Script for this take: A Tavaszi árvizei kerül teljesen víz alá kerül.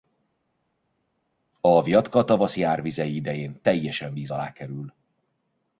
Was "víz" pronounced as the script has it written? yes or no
yes